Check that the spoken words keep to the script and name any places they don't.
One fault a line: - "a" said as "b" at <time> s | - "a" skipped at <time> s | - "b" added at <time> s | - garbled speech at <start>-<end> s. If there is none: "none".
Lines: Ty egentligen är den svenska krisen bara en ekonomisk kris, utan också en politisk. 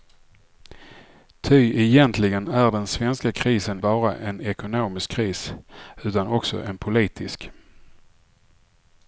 none